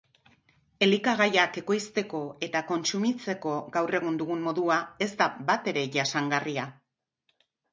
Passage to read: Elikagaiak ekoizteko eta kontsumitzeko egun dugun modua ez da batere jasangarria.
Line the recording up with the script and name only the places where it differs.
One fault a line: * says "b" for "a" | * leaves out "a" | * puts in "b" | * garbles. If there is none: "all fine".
* puts in "gaur"